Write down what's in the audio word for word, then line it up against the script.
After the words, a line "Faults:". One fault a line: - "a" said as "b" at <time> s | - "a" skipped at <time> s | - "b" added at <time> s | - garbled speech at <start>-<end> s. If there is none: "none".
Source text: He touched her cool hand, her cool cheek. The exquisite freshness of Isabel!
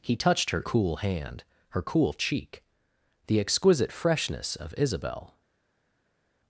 He touched her cool hand, her cool cheek. The exquisite freshness of Isabel!
Faults:
none